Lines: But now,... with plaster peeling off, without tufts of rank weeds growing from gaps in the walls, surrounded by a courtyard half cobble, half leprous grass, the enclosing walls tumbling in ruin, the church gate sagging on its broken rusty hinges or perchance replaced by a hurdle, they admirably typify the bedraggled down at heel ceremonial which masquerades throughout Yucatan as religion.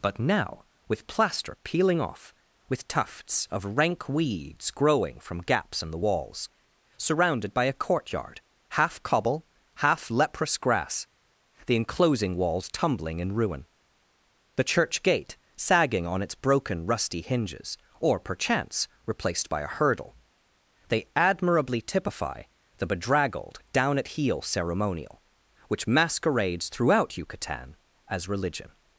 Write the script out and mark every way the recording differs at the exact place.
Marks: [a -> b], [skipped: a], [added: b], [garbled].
But now,... with plaster peeling off, [without -> with] tufts of rank weeds growing from gaps in the walls, surrounded by a courtyard half cobble, half leprous grass, the enclosing walls tumbling in ruin, the church gate sagging on its broken rusty hinges or perchance replaced by a hurdle, they admirably typify the bedraggled down at heel ceremonial which masquerades throughout Yucatan as religion.